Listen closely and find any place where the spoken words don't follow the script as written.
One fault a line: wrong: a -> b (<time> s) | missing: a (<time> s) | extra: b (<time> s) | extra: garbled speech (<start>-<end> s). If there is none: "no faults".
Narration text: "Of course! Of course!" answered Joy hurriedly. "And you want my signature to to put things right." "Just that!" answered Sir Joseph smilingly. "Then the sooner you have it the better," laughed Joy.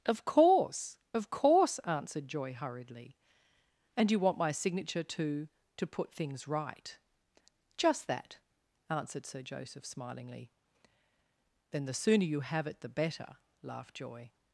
no faults